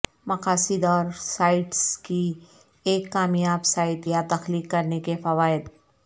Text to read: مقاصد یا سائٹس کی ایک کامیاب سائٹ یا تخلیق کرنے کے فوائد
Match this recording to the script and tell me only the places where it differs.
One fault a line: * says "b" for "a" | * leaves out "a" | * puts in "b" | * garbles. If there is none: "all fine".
* says "اور" for "یا"